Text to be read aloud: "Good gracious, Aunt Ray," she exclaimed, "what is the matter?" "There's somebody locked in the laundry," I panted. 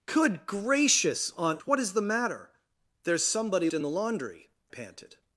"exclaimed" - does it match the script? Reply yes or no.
no